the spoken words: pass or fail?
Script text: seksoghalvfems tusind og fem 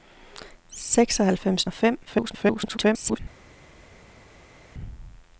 fail